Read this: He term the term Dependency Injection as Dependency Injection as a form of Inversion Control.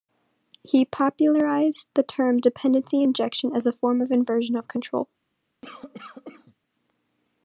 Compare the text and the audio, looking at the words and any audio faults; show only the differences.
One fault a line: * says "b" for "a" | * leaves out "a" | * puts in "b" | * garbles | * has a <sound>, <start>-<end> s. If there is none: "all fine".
* says "popularized" for "term"
* leaves out "Dependency Injection as"
* puts in "of"
* has a cough, 5.6-6.5 s